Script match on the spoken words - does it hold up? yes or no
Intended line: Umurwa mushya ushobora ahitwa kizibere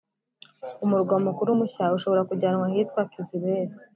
no